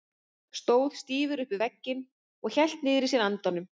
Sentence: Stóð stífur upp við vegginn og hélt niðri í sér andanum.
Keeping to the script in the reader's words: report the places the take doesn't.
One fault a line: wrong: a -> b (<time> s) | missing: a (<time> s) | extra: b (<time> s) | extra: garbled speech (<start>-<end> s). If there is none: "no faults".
no faults